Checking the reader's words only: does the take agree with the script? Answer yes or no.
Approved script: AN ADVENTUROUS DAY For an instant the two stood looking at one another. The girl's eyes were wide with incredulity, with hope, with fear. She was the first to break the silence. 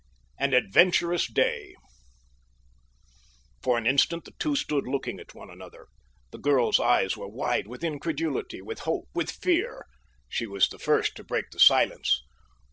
yes